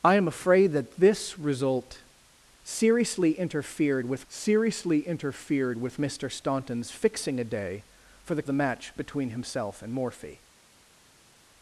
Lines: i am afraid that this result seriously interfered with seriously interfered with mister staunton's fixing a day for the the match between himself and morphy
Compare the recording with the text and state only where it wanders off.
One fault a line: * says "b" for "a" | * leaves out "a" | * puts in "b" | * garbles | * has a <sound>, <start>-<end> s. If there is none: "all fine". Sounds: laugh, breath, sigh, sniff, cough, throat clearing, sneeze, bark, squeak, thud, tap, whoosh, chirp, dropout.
all fine